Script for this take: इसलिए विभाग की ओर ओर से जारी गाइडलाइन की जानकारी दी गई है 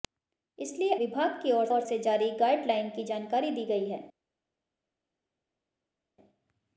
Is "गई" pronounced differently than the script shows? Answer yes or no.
no